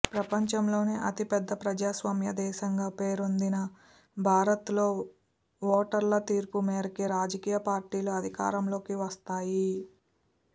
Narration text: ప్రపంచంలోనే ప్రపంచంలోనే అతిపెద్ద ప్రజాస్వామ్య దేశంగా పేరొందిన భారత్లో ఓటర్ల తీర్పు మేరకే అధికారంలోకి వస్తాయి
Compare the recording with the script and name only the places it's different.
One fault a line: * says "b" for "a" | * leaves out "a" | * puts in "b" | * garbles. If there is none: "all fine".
* leaves out "ప్రపంచంలోనే"
* puts in "రాజకీయ పార్టీలు"